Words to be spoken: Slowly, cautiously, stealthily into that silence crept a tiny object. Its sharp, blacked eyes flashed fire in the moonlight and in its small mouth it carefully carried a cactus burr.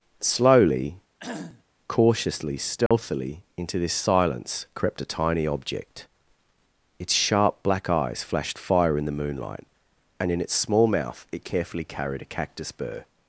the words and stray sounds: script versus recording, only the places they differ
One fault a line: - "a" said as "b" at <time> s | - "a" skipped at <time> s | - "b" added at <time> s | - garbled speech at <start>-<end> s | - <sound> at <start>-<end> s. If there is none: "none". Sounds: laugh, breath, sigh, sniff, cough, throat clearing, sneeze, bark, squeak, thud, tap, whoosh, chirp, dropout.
- cough at 1.2-1.6 s
- dropout at 2.9-2.9 s
- "that" said as "this" at 3.8 s
- "blacked" said as "black" at 7.6 s